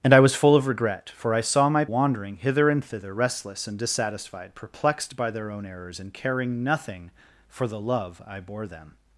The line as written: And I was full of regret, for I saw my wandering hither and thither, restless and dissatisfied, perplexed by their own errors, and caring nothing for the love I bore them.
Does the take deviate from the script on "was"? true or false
false